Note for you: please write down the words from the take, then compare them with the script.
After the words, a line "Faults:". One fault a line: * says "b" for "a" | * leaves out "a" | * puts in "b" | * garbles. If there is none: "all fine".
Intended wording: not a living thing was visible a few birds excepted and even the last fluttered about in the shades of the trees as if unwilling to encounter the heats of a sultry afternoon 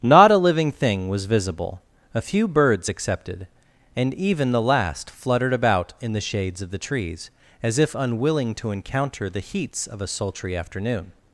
not a living thing was visible a few birds excepted and even the last fluttered about in the shades of the trees as if unwilling to encounter the heats of a sultry afternoon
Faults:
all fine